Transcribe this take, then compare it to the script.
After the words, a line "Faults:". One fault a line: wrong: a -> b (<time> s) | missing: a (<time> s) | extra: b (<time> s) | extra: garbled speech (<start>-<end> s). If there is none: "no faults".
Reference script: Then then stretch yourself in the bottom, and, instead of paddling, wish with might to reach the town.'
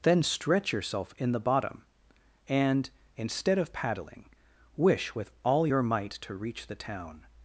Then stretch yourself in the bottom, and, instead of paddling, wish with all your might to reach the town.'
Faults:
missing: then (0.2 s)
extra: all your (5.4 s)